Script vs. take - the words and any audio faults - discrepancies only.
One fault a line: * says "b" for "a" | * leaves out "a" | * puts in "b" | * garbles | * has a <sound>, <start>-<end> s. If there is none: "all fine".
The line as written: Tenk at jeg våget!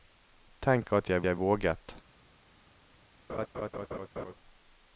* puts in "jeg"
* has a laugh, 3.3-4.3 s